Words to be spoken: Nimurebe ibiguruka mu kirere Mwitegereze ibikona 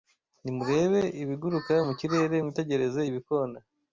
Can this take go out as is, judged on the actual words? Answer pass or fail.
pass